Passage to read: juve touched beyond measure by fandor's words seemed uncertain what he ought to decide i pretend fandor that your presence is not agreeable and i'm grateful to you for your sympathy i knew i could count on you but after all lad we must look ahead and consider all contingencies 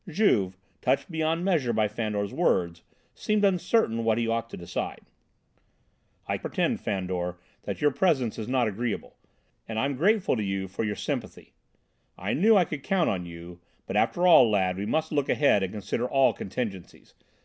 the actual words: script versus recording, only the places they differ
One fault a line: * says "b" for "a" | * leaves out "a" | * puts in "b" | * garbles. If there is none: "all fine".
all fine